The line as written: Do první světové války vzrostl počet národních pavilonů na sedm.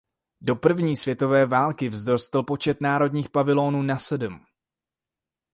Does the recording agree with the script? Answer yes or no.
yes